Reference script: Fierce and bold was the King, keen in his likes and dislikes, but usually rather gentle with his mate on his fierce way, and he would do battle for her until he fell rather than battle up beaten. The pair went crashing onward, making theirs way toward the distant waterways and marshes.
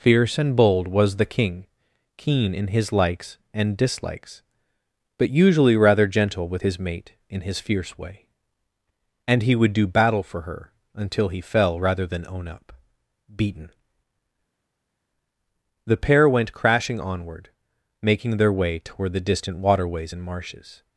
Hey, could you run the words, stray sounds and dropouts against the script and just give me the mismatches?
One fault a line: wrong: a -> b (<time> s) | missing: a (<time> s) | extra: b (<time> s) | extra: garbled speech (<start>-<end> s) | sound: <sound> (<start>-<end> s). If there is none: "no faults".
wrong: on -> in (7.3 s)
wrong: battle -> own (12.3 s)
wrong: theirs -> their (18.4 s)